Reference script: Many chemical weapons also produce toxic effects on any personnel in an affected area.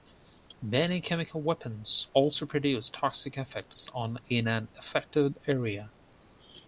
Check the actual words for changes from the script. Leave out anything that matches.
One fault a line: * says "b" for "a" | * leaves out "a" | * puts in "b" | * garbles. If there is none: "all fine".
* leaves out "any personnel"